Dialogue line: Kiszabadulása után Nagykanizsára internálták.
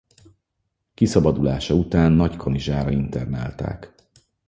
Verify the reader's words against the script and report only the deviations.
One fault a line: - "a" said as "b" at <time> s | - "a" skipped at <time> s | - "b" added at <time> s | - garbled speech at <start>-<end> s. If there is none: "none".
none